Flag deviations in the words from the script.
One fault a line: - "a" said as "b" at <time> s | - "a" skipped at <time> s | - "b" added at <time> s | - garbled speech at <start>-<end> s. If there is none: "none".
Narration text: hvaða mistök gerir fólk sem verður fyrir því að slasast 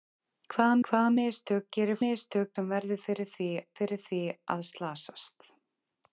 - "hvaða" added at 0.9 s
- "fólk" said as "mistök" at 2.0 s
- "fyrir því" added at 3.8 s